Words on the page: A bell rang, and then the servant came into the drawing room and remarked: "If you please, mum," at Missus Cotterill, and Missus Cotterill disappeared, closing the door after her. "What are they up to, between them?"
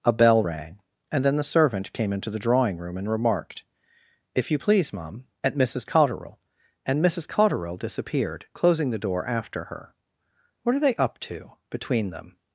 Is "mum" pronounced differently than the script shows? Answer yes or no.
no